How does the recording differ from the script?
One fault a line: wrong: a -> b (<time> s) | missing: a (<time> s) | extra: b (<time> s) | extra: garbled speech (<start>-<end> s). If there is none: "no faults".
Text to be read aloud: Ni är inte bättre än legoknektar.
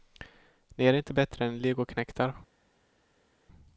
no faults